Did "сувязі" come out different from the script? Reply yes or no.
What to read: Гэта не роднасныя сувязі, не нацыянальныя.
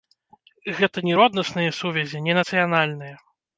no